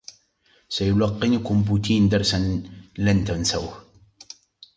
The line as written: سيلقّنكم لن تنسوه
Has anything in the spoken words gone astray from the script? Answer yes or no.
yes